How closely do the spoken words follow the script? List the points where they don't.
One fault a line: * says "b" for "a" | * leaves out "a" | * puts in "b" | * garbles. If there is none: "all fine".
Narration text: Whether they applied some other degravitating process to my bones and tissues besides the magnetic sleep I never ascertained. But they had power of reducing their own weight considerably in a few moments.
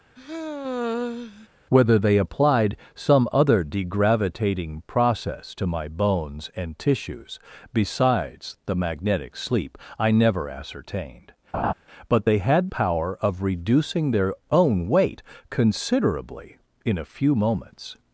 all fine